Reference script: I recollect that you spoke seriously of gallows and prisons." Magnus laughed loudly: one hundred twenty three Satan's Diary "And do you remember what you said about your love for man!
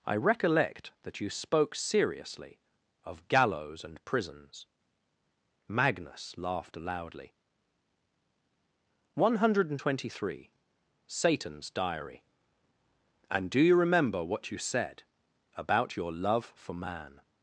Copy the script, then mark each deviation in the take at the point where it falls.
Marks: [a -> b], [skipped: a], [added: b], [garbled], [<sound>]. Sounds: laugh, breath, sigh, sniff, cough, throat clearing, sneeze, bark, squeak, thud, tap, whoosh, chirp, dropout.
I recollect that you spoke seriously of gallows and prisons." Magnus laughed loudly: one hundred twenty three Satan's Diary "And do you remember what you said about your love for man!